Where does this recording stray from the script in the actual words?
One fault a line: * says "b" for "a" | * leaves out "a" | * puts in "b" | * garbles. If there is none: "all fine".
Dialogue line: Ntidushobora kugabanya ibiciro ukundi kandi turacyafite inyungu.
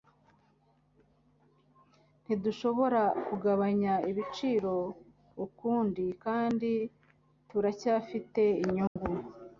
all fine